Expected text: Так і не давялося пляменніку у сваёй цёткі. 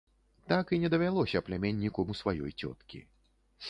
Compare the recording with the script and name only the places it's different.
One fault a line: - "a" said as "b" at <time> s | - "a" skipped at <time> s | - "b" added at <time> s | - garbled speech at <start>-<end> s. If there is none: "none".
none